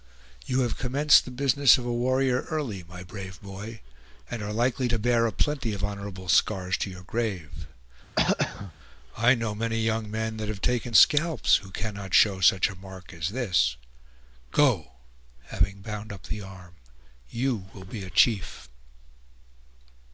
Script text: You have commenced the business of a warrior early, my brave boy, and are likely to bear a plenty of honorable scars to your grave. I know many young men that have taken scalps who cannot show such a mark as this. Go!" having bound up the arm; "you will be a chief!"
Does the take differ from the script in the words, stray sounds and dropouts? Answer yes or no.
yes